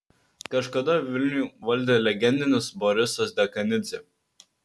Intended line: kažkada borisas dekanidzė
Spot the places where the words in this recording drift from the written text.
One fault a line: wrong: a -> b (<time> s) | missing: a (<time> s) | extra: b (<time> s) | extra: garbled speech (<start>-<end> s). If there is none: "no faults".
extra: vilnių valdė legendinis (1.1 s)